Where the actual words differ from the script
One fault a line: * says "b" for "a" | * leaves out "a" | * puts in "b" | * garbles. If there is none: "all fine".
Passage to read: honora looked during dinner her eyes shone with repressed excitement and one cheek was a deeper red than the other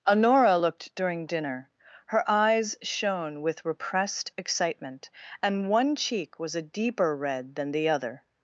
all fine